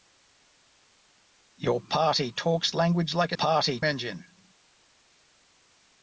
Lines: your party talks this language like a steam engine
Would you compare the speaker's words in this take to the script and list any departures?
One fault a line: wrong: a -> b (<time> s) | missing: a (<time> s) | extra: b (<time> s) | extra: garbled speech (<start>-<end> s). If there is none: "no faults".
missing: this (2.7 s)
wrong: steam -> party (3.4 s)